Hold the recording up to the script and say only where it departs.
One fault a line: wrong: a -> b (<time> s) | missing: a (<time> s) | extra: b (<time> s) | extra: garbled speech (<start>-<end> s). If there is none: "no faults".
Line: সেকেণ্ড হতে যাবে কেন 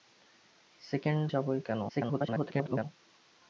missing: হতে (1.3 s)
extra: garbled speech (1.9-2.8 s)